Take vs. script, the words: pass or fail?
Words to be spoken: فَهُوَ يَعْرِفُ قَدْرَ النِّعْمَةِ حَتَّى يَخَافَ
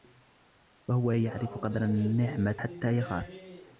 pass